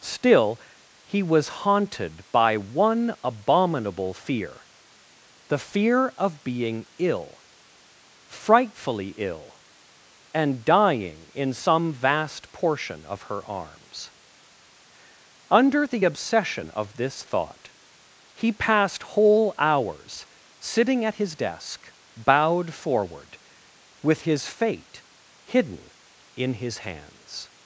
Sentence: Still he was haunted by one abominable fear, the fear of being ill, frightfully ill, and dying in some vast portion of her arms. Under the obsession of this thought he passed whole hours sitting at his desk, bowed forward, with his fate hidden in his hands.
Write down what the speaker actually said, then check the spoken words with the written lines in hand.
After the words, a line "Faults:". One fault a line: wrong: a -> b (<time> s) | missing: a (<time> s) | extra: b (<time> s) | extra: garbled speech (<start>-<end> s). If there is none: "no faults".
Still he was haunted by one abominable fear, the fear of being ill, frightfully ill, and dying in some vast portion of her arms. Under the obsession of this thought he passed whole hours sitting at his desk, bowed forward, with his fate hidden in his hands.
Faults:
no faults